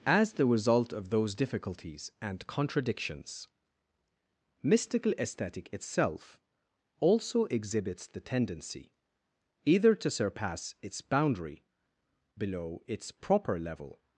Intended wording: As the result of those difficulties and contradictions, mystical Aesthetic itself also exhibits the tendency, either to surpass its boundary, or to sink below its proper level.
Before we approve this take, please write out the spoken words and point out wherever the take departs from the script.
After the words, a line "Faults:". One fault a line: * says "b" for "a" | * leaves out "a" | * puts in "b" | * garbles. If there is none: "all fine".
As the result of those difficulties and contradictions, mystical Aesthetic itself also exhibits the tendency, either to surpass its boundary, below its proper level.
Faults:
* leaves out "or to sink"